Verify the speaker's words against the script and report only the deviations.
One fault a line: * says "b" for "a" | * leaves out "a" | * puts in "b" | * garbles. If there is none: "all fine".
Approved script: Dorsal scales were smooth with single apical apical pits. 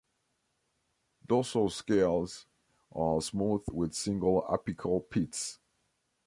* says "are" for "were"
* leaves out "apical"